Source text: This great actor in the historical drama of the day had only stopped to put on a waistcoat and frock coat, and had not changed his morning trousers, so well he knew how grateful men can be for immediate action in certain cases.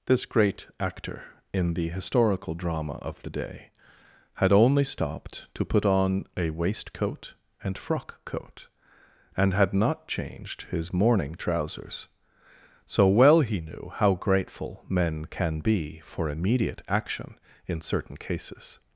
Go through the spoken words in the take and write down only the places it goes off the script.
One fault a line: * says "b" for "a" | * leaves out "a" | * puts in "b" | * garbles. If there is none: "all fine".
all fine